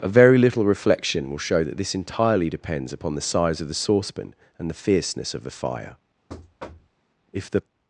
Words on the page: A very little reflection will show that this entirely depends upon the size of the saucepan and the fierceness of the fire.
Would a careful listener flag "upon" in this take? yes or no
no